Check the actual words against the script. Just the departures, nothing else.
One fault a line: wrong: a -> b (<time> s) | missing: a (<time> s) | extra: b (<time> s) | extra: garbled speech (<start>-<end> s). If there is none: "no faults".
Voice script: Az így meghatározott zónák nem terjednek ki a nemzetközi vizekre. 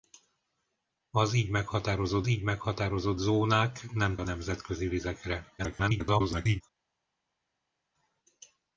extra: így meghatározott (2.3 s)
missing: terjednek ki (4.2 s)
extra: garbled speech (5.6-6.6 s)